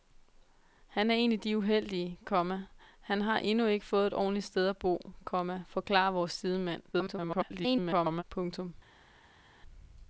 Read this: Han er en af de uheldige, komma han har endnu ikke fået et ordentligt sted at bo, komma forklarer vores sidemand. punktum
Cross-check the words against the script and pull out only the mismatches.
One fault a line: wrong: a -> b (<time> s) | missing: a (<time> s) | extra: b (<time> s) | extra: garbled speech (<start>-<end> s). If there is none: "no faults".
extra: garbled speech (6.9-8.2 s)